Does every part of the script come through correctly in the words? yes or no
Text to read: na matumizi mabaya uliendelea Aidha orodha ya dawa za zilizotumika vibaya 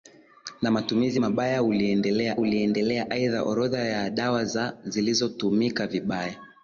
no